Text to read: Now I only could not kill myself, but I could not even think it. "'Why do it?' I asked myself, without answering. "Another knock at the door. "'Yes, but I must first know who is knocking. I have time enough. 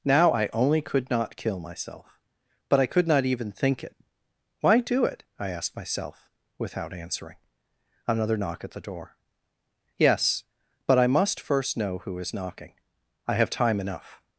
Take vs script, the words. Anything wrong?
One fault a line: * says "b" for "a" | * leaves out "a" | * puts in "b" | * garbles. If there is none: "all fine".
all fine